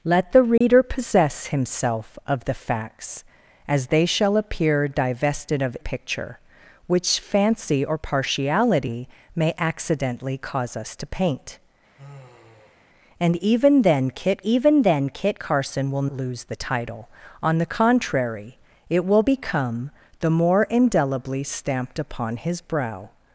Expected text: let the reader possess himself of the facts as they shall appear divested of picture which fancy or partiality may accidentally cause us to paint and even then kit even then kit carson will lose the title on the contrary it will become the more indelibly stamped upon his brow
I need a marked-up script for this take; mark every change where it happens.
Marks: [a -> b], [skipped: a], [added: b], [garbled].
let the reader possess himself of the facts as they shall appear divested of picture which fancy or partiality may accidentally cause us to paint and even then kit even then kit carson will lose the title on the contrary it will become the more indelibly stamped upon his brow